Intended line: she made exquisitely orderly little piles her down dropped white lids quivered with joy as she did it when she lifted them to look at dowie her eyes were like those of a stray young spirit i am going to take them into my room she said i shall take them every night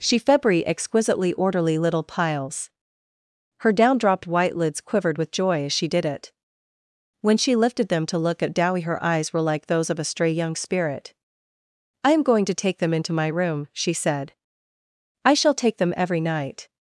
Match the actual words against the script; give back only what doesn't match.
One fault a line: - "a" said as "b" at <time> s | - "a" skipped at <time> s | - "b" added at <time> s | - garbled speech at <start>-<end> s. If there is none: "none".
- "made" said as "febri" at 0.2 s